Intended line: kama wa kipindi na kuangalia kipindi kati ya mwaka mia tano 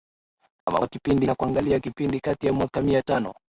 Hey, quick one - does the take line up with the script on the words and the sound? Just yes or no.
no